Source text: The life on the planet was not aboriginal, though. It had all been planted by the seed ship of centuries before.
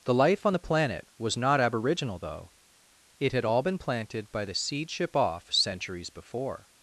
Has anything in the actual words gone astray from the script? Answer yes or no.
yes